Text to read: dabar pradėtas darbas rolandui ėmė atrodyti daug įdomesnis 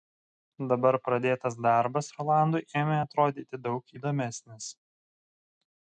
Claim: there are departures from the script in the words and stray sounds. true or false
false